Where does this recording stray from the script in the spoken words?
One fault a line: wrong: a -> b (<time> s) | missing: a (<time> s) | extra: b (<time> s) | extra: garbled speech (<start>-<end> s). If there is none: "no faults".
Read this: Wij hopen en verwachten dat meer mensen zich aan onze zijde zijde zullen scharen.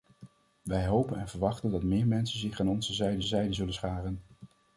no faults